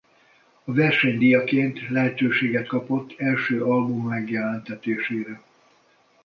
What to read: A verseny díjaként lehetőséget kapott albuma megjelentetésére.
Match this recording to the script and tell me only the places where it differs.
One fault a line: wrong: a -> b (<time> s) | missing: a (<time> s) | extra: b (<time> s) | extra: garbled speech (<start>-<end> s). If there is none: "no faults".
extra: első (3.2 s)